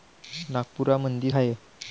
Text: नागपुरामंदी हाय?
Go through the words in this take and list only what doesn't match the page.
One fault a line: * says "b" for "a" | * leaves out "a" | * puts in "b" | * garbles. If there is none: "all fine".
all fine